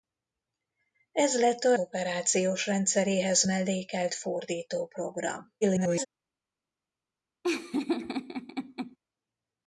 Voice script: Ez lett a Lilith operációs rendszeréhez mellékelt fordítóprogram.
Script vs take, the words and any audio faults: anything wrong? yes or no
yes